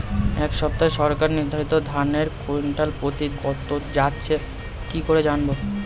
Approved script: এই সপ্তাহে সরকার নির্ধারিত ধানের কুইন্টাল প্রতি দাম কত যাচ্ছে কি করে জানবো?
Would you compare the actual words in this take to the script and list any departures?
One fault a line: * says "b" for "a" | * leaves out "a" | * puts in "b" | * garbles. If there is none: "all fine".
* leaves out "দাম"